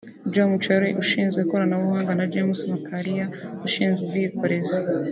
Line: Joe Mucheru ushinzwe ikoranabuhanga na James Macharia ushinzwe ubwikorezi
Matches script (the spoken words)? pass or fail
pass